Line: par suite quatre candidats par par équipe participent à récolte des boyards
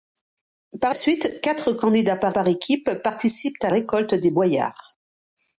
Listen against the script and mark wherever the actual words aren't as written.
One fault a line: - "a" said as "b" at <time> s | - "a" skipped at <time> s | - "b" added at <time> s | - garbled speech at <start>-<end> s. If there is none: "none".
none